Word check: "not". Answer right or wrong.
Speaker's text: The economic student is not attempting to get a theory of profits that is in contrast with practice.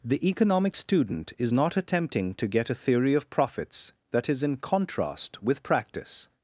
right